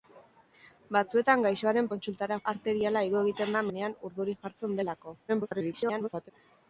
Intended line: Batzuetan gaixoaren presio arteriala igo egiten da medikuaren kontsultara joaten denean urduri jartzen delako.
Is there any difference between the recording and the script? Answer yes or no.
yes